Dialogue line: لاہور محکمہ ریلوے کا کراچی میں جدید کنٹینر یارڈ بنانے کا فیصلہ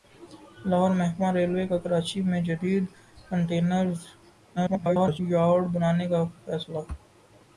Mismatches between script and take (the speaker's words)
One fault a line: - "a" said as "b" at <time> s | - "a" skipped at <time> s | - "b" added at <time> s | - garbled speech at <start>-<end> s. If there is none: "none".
- garbled speech at 4.6-5.2 s